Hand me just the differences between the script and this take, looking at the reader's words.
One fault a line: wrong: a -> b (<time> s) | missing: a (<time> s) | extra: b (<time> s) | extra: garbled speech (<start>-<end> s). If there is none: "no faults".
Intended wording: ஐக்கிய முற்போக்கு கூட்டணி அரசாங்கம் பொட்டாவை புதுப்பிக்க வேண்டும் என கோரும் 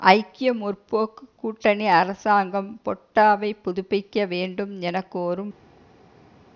no faults